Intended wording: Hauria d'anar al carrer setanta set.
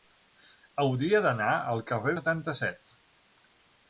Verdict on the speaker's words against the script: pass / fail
pass